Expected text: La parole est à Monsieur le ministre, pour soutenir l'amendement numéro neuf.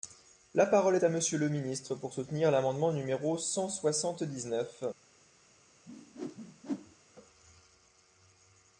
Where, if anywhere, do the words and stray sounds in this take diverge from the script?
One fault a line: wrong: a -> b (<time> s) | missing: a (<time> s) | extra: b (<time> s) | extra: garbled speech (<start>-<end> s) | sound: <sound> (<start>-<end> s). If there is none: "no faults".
extra: cent soixante dix (3.4 s)
sound: whoosh (5.9-7.0 s)